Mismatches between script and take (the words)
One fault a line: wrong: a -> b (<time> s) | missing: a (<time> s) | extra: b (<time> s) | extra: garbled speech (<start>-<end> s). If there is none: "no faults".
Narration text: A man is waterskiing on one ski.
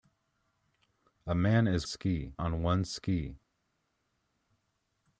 wrong: waterskiing -> ski (1.8 s)